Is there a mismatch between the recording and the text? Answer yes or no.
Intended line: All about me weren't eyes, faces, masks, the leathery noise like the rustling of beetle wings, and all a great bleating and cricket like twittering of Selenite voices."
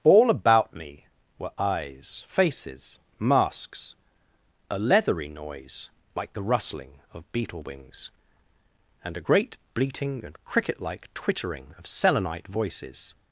yes